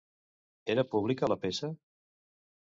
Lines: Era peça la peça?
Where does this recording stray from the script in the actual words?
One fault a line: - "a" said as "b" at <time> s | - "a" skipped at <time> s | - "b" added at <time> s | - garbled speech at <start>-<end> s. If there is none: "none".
- "peça" said as "pública" at 0.9 s